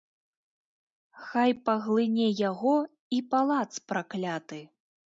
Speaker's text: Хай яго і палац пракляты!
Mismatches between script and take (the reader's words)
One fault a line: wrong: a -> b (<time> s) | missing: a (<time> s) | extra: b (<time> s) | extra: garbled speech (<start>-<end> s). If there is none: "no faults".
extra: паглыне (1.7 s)